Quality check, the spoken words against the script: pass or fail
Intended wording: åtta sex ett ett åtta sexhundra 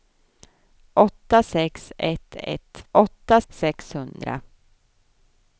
pass